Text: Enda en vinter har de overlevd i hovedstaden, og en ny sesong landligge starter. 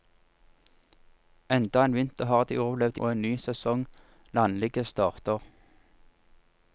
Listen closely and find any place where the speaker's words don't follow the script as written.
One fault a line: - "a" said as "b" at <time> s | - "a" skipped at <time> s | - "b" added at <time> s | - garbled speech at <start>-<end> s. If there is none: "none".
- "hovedstaden" skipped at 3.0 s